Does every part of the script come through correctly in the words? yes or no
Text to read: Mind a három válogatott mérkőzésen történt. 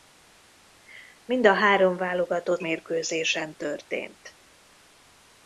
yes